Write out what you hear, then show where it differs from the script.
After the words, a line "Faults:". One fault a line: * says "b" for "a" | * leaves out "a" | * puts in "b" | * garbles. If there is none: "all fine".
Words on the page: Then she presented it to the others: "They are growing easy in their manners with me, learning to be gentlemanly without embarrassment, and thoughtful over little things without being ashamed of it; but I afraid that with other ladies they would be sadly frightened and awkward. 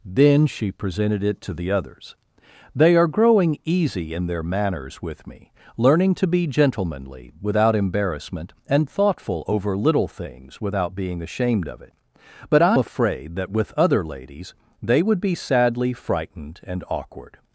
Then she presented it to the others: "They are growing easy in their manners with me, learning to be gentlemanly without embarrassment, and thoughtful over little things without being ashamed of it; but I afraid that with other ladies they would be sadly frightened and awkward.
Faults:
all fine